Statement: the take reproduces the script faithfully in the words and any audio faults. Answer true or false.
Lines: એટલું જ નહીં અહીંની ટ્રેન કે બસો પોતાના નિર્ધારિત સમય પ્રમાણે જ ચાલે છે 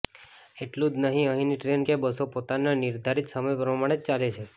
true